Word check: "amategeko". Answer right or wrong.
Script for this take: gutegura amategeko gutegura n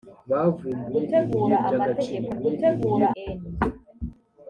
right